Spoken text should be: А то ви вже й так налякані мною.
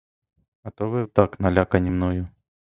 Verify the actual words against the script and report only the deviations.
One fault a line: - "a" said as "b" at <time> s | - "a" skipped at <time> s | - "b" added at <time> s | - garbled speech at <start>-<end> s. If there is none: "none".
- "вже" skipped at 1.0 s